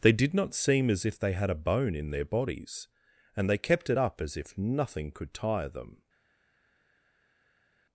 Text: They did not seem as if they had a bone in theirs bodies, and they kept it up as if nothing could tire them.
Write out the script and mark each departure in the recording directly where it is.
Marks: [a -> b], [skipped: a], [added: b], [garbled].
They did not seem as if they had a bone in [theirs -> their] bodies, and they kept it up as if nothing could tire them.